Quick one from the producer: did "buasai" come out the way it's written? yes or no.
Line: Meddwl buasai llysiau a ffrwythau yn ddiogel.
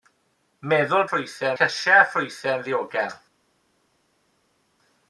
no